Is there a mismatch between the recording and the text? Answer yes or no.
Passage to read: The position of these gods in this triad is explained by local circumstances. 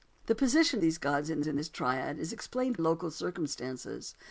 yes